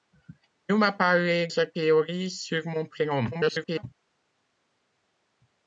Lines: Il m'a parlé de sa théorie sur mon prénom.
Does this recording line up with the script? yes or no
no